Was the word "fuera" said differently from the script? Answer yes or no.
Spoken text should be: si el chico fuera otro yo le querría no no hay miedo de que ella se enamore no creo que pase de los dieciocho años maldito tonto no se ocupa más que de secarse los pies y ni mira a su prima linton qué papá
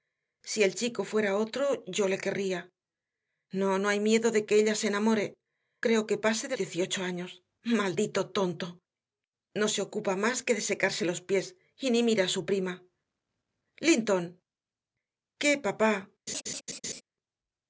no